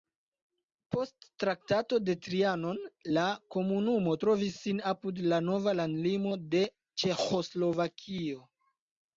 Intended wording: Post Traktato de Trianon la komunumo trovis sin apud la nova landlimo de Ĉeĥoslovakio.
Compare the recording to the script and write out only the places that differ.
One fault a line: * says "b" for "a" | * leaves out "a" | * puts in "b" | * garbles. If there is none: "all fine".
all fine